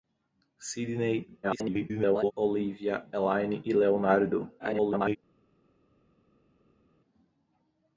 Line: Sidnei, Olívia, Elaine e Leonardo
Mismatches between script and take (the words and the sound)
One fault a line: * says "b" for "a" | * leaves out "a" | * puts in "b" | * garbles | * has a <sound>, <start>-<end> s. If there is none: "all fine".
* garbles
* garbles